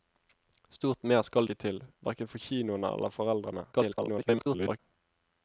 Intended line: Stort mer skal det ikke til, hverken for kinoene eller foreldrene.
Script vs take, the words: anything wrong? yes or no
yes